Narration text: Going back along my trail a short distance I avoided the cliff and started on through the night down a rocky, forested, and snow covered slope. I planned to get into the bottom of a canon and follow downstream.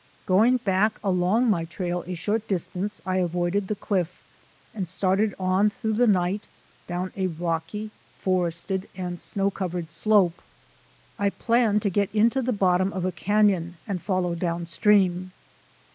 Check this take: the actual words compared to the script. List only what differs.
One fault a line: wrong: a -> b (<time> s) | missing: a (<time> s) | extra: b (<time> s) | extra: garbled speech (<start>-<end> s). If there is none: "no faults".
no faults